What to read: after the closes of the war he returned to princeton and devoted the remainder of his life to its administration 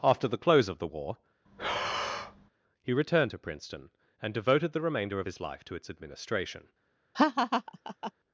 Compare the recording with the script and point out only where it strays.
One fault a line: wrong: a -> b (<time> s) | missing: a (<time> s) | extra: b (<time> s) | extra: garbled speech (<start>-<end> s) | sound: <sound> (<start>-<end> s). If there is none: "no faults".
wrong: closes -> close (0.4 s)
sound: breath (1.5-2.5 s)
sound: laugh (7.1-8.1 s)